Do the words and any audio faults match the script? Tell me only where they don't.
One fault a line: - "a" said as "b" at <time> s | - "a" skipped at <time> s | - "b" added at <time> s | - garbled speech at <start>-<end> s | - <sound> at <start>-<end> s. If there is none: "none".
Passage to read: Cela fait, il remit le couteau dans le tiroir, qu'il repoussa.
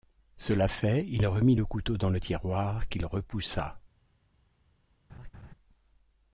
- laugh at 5.1-5.5 s